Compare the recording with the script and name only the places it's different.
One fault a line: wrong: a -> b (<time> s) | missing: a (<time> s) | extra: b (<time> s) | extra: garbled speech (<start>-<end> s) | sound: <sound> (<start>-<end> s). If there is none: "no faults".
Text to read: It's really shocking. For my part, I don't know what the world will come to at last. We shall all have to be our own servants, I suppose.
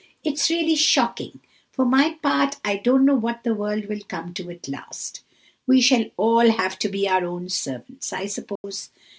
sound: dropout (8.6-8.6 s)